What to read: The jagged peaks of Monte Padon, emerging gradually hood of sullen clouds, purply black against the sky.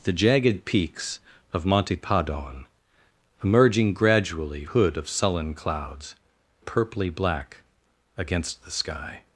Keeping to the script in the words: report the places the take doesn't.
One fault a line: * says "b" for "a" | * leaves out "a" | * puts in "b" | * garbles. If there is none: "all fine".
all fine